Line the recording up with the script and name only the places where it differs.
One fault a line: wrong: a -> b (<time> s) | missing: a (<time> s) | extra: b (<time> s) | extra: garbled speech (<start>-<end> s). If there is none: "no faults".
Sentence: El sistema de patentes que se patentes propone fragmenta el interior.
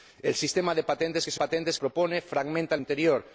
no faults